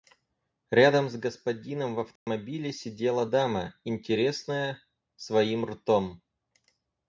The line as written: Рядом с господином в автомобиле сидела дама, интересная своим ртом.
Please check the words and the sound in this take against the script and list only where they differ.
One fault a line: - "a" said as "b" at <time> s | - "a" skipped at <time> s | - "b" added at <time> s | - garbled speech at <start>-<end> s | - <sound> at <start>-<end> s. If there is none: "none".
- dropout at 2.2-2.3 s